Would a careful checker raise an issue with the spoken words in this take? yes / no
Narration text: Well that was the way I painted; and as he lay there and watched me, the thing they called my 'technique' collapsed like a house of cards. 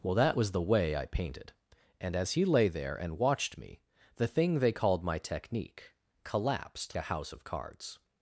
yes